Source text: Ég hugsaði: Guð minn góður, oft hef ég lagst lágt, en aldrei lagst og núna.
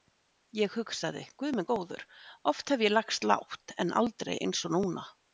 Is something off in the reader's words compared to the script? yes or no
yes